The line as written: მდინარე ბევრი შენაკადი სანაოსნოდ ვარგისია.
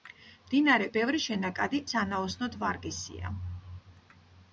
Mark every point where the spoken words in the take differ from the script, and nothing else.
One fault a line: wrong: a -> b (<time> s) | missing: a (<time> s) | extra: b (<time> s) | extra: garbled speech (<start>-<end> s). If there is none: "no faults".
no faults